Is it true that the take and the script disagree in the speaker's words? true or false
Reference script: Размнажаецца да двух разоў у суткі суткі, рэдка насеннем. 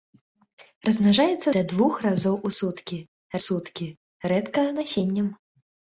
false